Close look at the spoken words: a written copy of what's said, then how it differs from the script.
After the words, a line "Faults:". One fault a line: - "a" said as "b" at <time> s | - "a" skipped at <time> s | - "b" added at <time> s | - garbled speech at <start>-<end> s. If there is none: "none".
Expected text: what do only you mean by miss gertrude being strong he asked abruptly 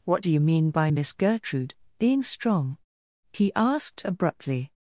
what do you mean by miss gertrude being strong he asked abruptly
Faults:
- "only" skipped at 0.3 s